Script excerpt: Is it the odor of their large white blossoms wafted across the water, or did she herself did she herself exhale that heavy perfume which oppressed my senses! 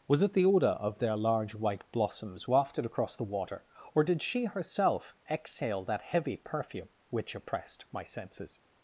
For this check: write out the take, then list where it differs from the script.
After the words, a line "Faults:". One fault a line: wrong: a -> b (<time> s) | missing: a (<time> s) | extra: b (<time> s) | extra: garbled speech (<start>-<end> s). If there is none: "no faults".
Was it the odor of their large white blossoms wafted across the water, or did she herself exhale that heavy perfume which oppressed my senses!
Faults:
wrong: Is -> Was (0.1 s)
missing: did she herself (5.2 s)